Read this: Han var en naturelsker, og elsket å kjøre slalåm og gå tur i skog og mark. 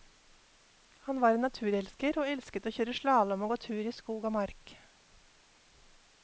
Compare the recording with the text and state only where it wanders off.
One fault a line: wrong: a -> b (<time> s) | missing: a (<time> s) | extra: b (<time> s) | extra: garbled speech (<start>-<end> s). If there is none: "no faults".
no faults